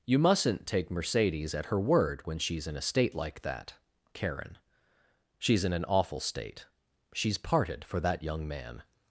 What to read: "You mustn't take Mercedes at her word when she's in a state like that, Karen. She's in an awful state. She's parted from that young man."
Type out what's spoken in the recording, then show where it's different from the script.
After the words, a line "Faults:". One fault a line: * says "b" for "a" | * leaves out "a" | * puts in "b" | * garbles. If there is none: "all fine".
"You mustn't take Mercedes at her word when she's in a state like that, Karen. She's in an awful state. She's parted for that young man."
Faults:
* says "for" for "from"